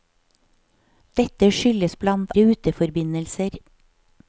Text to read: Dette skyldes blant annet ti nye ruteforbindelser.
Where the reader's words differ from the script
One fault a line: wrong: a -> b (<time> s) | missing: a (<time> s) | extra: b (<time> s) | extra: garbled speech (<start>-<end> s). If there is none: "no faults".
missing: annet ti nye (2.3 s)